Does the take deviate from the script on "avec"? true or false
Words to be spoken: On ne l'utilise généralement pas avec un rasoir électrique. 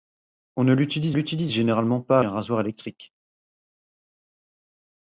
true